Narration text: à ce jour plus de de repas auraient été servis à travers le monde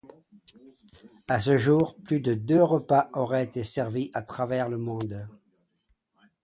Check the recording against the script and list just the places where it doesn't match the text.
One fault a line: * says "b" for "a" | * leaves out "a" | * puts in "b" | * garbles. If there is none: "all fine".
all fine